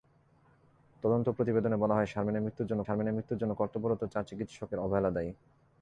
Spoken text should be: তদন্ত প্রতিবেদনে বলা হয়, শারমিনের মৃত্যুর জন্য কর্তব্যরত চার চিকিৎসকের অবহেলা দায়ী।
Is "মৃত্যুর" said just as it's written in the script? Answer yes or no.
yes